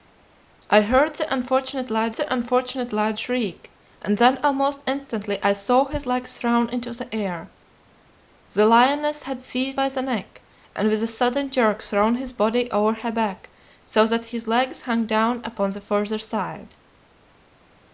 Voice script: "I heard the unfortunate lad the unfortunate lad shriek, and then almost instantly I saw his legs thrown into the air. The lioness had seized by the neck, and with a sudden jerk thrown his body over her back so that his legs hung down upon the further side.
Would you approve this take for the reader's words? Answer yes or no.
yes